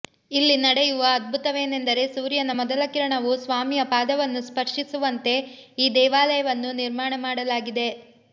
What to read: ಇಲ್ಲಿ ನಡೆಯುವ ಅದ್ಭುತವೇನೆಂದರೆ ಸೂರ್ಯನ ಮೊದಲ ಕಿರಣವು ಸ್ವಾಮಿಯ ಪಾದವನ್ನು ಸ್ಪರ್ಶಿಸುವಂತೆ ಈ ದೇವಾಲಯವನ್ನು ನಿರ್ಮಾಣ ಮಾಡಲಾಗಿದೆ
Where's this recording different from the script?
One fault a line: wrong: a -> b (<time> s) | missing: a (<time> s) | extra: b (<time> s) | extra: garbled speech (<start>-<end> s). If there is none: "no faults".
no faults